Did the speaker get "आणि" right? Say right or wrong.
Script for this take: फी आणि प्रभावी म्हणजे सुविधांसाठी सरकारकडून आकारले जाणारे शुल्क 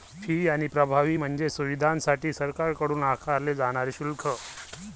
right